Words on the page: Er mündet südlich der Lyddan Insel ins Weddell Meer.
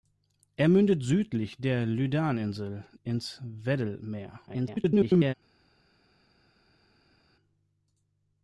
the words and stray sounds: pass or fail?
fail